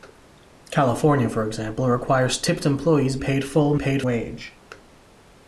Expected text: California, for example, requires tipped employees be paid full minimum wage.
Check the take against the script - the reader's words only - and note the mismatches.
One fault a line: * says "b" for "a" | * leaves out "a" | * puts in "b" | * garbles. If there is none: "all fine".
* leaves out "be"
* says "paid" for "minimum"